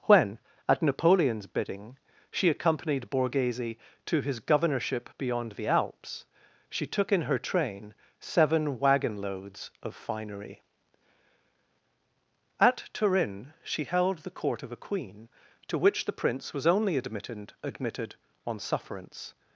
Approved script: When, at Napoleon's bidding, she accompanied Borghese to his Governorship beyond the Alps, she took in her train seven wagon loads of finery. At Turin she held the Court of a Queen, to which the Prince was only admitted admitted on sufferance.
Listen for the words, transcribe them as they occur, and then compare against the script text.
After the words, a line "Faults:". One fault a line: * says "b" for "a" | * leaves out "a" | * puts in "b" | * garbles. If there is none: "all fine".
When, at Napoleon's bidding, she accompanied Borghese to his Governorship beyond the Alps, she took in her train seven wagon loads of finery. At Turin she held the Court of a Queen, to which the Prince was only admitted admitted on sufferance.
Faults:
all fine